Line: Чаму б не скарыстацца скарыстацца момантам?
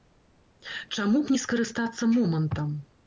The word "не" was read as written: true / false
true